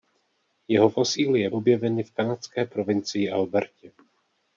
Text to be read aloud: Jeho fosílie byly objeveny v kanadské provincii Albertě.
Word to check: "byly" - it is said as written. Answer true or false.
false